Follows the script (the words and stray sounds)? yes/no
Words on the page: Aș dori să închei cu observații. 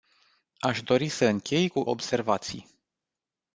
yes